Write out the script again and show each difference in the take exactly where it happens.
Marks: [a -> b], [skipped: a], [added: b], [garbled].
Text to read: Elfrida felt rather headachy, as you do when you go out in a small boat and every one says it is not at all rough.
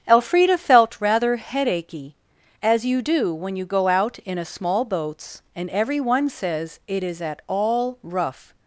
Elfrida felt rather headachy, as you do when you go out in a small [boat -> boats] and every one says it is [skipped: not] at all rough.